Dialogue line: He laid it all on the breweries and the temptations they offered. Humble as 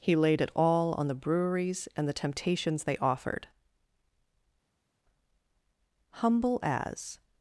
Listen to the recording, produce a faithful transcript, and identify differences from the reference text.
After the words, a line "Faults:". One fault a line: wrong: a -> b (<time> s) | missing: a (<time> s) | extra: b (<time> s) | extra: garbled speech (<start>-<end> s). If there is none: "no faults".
He laid it all on the breweries and the temptations they offered. Humble as
Faults:
no faults